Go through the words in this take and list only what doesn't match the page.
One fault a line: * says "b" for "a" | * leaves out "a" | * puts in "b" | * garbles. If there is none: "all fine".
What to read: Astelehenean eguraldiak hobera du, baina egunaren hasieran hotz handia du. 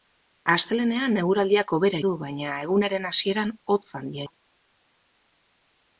all fine